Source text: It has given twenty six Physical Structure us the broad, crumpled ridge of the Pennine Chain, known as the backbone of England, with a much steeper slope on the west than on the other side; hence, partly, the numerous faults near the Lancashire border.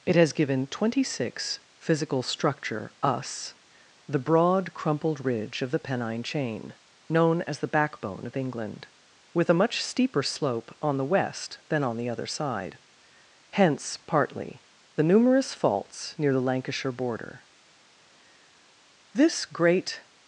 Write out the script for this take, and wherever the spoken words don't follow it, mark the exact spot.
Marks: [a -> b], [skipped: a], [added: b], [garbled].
It has given twenty six Physical Structure us the broad, crumpled ridge of the Pennine Chain, known as the backbone of England, with a much steeper slope on the west than on the other side; hence, partly, the numerous faults near the Lancashire border. [added: This great]